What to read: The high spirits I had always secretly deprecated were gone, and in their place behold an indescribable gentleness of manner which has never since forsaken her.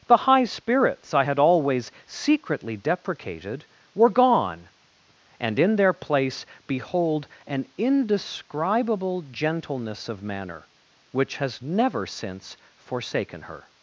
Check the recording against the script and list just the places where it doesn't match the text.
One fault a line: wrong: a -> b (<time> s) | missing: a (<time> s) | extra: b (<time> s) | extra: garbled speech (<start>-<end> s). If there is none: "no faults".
no faults